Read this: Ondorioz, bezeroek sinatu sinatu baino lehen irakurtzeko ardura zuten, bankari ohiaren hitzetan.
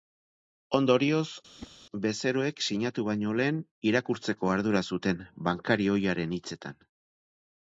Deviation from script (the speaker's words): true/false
true